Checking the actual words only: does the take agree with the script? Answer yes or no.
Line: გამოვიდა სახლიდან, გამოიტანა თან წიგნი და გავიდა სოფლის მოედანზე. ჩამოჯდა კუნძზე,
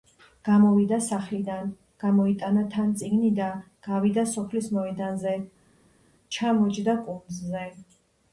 yes